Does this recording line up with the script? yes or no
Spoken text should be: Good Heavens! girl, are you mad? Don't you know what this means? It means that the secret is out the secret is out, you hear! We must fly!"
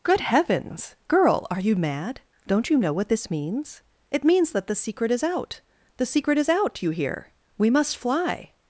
yes